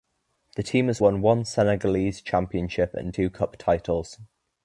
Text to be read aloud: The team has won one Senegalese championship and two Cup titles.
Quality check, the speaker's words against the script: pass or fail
pass